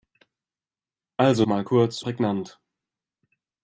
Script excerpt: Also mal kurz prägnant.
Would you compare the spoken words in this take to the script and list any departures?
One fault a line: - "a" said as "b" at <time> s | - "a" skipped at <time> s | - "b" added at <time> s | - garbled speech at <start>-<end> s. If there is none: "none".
none